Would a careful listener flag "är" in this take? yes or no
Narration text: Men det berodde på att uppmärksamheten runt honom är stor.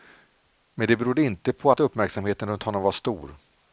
yes